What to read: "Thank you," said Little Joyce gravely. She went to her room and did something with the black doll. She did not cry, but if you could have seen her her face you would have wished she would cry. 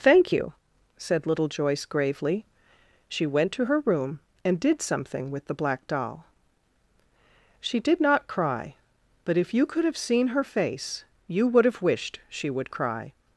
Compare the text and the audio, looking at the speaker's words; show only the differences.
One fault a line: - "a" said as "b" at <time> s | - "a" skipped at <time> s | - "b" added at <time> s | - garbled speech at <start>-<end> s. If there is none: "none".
- "her" skipped at 10.4 s